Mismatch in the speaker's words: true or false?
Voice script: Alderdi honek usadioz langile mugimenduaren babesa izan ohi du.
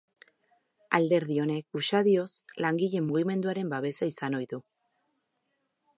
false